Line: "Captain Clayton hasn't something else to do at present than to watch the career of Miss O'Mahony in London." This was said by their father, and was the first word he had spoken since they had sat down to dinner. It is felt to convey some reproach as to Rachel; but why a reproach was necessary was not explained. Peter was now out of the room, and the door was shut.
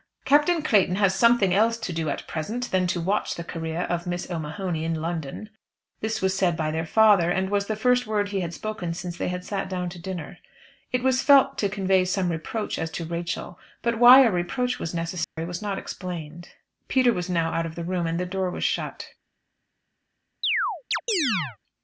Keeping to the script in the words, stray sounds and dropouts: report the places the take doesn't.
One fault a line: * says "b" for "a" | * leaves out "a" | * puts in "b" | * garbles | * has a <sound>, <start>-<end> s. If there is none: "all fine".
* says "has" for "hasn't"
* says "was" for "is"
* has a dropout, 15.2-15.4 s
* has a chirp, 20.4-21.6 s